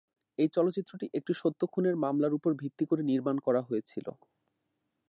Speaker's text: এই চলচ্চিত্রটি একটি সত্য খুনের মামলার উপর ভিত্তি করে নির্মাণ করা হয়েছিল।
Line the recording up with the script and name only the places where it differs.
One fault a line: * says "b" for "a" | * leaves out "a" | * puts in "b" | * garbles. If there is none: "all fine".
all fine